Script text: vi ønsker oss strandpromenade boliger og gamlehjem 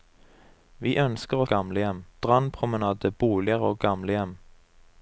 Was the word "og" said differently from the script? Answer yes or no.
no